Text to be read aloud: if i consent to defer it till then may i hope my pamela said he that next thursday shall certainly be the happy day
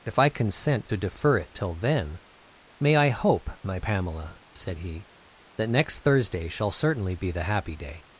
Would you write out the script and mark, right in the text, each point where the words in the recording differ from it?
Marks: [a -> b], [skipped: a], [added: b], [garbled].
if i consent to defer it till then may i hope my pamela said he that next thursday shall certainly be the happy day